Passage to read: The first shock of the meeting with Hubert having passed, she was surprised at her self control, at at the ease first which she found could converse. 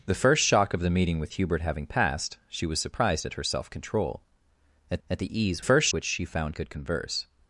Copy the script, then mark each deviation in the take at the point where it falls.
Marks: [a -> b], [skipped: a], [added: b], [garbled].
The first shock of the meeting with Hubert having passed, she was surprised at her self control, at at the ease first which she found could converse.